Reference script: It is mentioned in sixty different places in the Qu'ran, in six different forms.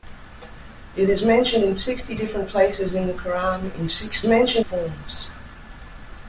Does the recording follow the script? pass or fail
fail